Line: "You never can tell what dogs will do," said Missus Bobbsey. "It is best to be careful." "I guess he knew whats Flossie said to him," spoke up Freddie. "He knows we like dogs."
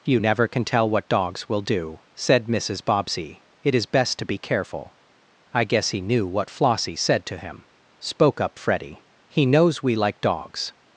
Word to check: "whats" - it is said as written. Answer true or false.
false